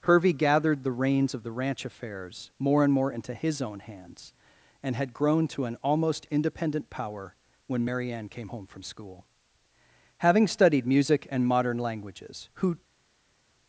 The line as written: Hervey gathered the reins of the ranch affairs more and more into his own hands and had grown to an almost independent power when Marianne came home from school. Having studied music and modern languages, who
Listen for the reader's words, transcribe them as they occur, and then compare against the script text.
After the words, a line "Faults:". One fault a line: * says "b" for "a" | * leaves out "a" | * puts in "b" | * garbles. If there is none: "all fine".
Hervey gathered the reins of the ranch affairs more and more into his own hands and had grown to an almost independent power when Marianne came home from school. Having studied music and modern languages, who
Faults:
all fine